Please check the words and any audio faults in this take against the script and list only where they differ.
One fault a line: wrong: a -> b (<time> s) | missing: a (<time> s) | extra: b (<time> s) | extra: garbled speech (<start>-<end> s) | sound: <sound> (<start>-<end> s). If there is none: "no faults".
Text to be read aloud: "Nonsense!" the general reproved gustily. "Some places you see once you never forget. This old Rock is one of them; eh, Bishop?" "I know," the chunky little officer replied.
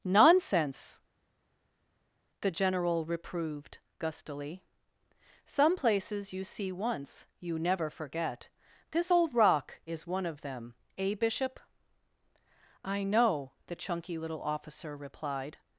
no faults